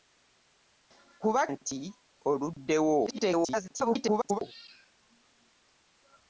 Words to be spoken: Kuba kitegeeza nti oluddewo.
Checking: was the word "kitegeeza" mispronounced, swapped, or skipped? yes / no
yes